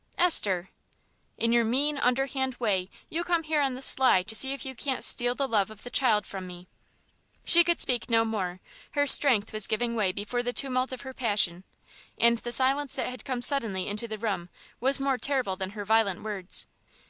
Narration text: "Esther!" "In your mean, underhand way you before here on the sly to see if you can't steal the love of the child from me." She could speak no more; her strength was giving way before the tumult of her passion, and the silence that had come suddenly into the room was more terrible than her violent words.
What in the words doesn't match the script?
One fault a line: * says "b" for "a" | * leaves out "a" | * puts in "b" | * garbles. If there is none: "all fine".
* says "come" for "before"